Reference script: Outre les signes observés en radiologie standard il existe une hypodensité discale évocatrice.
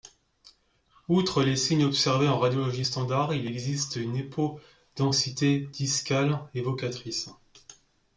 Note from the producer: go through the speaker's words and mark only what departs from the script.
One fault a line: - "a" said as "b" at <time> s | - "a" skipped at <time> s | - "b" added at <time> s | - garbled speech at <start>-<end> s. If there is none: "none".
none